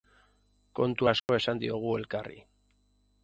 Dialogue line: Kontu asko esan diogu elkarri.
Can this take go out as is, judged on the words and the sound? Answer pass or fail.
fail